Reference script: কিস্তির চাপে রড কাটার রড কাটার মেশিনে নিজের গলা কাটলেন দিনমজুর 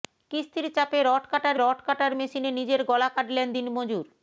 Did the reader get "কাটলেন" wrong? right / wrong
right